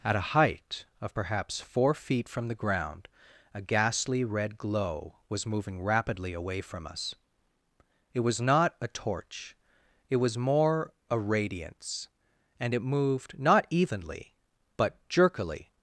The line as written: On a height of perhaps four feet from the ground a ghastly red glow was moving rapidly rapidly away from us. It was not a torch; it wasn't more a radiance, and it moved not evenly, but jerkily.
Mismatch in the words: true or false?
true